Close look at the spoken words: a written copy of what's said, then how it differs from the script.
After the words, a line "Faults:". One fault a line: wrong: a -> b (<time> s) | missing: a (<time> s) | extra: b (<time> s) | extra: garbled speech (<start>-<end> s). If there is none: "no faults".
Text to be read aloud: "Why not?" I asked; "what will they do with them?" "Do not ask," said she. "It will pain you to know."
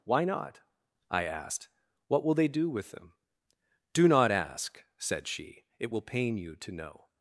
"Why not?" I asked; "what will they do with them?" "Do not ask," said she. "It will pain you to know."
Faults:
no faults